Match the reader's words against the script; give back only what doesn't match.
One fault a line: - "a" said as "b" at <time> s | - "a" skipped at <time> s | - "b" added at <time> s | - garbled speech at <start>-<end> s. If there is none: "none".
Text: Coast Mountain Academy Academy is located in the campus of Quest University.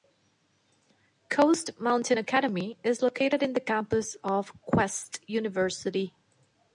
- "Academy" skipped at 2.8 s